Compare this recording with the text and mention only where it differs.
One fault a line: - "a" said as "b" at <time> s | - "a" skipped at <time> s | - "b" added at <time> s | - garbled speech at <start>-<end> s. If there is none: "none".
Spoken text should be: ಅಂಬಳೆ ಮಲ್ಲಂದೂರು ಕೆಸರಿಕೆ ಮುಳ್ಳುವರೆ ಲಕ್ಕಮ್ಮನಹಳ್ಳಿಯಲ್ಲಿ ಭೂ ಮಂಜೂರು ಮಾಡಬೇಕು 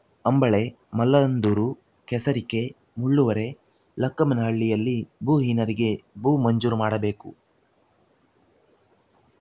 - "ಭೂಹೀನರಿಗೆ" added at 5.2 s